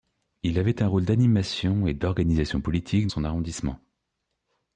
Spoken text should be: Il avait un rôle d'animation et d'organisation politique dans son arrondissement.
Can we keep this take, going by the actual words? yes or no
no